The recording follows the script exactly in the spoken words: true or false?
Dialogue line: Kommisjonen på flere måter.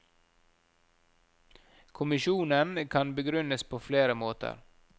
false